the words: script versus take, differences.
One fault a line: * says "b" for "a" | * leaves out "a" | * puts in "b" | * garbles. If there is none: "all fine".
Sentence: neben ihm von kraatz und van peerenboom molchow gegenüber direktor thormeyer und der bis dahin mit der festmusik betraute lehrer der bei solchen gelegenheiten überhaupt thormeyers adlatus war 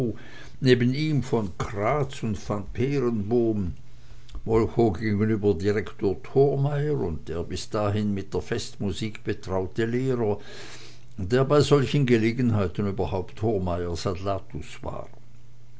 all fine